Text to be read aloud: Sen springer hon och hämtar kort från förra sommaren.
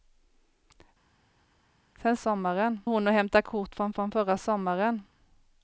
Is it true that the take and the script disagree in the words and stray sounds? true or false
true